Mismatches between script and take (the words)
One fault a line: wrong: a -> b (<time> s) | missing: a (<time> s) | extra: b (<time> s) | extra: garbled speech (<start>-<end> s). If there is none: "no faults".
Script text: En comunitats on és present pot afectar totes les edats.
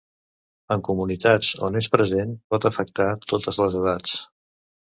no faults